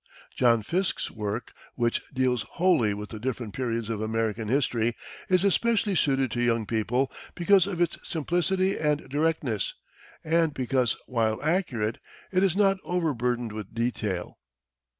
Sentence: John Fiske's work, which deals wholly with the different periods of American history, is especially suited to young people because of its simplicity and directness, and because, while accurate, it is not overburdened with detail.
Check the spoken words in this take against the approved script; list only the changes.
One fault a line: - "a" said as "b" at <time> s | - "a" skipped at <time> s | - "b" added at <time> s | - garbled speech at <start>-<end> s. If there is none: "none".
none